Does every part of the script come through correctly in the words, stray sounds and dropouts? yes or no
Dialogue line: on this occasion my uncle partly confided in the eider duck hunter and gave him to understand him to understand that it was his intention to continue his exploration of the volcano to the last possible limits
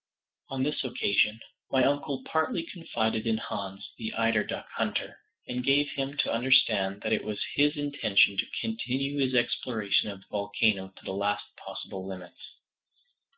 no